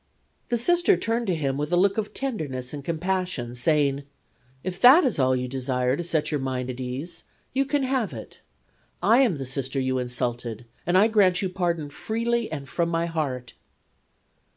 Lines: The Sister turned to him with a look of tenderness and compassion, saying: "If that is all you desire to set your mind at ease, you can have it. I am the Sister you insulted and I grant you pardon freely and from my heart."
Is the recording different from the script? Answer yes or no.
no